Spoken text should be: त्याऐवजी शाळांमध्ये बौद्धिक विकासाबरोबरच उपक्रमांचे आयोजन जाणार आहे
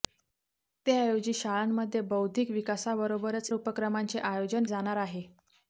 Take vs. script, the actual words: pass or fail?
pass